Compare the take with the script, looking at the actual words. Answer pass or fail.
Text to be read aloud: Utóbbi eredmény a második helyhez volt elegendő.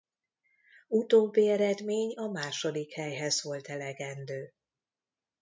pass